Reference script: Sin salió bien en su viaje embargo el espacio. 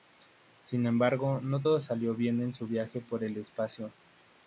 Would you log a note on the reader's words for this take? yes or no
yes